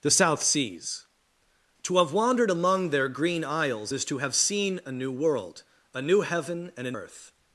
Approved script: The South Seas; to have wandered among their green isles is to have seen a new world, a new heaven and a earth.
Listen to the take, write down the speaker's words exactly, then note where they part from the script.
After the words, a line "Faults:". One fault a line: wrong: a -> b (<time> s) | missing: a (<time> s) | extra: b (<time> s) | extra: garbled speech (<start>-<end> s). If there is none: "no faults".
The South Seas; to have wandered among their green isles is to have seen a new world, a new heaven and a earth.
Faults:
no faults